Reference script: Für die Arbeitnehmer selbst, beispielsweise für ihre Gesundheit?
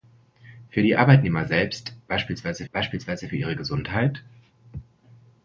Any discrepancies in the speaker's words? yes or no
yes